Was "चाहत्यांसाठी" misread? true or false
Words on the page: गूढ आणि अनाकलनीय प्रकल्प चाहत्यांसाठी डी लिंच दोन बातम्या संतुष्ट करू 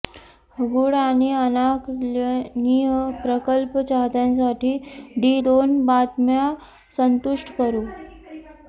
false